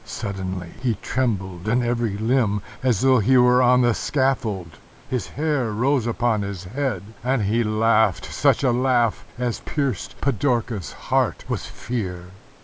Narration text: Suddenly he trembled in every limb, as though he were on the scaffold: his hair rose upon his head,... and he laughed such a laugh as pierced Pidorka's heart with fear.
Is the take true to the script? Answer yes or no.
yes